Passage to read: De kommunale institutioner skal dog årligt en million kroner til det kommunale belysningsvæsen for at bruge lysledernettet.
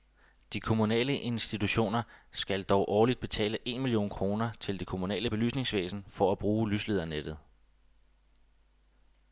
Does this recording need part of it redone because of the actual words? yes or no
yes